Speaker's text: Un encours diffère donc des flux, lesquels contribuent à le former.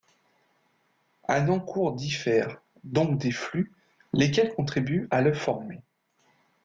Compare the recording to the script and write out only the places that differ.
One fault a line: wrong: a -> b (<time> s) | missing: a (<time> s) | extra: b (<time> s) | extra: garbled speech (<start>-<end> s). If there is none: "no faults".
no faults